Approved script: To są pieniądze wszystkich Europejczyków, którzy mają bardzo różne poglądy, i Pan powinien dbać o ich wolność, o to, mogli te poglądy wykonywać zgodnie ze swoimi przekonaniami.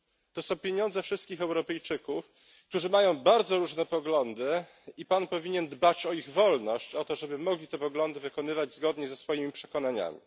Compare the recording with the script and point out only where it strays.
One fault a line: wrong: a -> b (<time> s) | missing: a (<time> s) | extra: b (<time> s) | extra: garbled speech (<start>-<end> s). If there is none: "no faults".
extra: żeby (7.2 s)